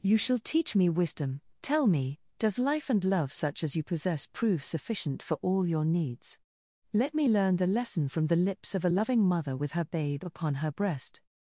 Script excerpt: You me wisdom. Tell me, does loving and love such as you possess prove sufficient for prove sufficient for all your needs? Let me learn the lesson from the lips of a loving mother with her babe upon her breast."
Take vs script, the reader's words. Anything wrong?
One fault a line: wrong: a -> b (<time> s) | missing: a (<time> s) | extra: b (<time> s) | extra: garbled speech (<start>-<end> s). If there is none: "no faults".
extra: shall teach (0.2 s)
wrong: loving -> life (2.6 s)
missing: prove sufficient for (5.3 s)